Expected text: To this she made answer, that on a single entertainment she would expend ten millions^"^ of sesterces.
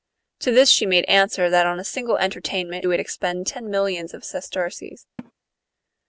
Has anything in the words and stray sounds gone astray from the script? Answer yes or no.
yes